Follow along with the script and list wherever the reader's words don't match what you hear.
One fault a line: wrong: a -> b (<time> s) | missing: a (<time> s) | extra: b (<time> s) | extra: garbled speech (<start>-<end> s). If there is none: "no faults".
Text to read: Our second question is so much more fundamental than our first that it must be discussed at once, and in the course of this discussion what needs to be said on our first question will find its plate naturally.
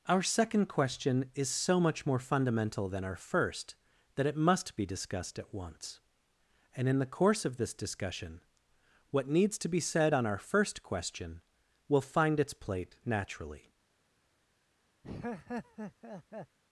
no faults